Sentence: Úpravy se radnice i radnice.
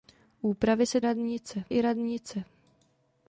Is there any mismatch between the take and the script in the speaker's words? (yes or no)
no